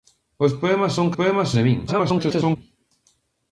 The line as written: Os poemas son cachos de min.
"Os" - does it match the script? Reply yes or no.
yes